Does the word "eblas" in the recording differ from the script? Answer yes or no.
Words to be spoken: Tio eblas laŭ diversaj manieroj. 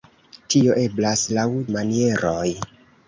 no